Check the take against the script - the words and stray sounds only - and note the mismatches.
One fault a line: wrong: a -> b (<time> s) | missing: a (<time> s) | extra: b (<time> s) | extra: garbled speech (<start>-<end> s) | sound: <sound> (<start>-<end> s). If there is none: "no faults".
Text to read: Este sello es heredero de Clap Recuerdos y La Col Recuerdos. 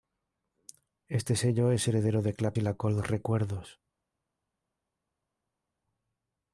missing: Recuerdos (2.6 s)